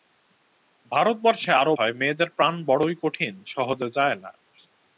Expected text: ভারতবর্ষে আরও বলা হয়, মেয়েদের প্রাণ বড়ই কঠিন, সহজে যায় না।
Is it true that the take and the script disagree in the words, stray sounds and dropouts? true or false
true